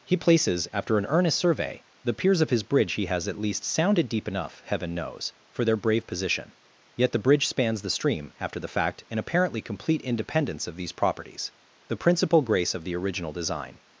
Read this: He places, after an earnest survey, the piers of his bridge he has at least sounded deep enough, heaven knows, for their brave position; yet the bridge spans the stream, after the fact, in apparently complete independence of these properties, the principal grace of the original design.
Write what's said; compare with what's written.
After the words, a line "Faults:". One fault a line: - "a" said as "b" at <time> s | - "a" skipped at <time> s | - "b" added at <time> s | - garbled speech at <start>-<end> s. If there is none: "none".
He places, after an earnest survey, the piers of his bridge he has at least sounded deep enough, heaven knows, for their brave position; yet the bridge spans the stream, after the fact, in apparently complete independence of these properties, the principal grace of the original design.
Faults:
none